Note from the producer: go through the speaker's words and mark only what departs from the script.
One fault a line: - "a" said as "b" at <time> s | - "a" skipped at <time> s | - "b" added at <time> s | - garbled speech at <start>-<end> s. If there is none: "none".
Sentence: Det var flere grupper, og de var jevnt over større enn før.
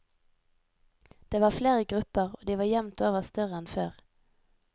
none